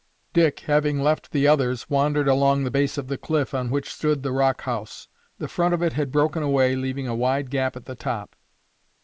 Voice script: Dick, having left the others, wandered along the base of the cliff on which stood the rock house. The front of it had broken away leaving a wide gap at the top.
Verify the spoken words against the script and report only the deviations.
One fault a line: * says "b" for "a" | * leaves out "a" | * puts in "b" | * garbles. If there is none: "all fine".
all fine